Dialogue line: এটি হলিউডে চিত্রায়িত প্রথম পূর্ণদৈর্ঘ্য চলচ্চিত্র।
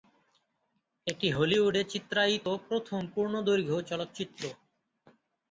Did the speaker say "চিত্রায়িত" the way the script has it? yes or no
yes